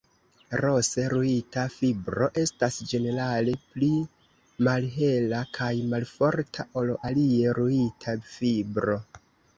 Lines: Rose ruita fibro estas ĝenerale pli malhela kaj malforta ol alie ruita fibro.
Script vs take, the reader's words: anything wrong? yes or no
no